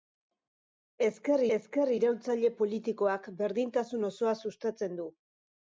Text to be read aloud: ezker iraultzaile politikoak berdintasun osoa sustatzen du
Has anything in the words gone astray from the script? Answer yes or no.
yes